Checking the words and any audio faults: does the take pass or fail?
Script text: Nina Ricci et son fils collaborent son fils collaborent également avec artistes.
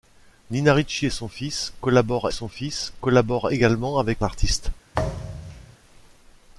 fail